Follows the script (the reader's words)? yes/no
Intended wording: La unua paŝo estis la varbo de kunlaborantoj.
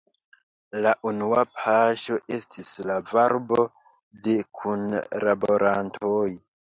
yes